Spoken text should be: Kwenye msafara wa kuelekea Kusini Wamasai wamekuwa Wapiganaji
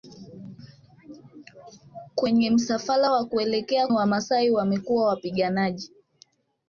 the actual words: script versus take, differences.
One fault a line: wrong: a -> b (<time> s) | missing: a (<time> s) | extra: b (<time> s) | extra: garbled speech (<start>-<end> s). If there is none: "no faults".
missing: Kusini (3.9 s)